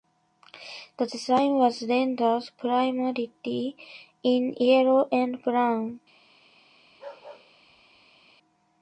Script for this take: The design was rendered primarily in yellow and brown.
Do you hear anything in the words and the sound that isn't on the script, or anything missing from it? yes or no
yes